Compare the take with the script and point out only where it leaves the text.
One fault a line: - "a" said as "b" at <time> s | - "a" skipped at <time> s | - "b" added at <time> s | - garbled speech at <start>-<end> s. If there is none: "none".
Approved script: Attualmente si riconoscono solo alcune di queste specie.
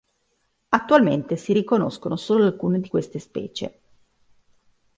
none